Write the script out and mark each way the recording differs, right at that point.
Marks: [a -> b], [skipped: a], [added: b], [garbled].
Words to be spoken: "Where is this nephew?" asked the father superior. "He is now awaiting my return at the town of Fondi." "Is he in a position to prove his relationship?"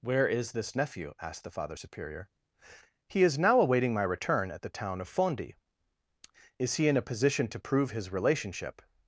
"Where is this nephew?" asked the father superior. "He is now awaiting my return at the town of Fondi." "Is he in a position to prove his relationship?"